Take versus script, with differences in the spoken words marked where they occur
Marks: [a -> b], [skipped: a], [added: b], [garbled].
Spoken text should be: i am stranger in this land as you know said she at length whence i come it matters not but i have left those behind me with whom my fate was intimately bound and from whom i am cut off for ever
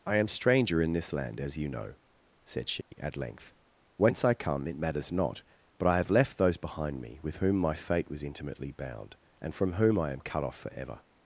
i am stranger in this land as you know said she at length whence i come it matters not but i have left those behind me with whom my fate was intimately bound and from whom i am cut off for ever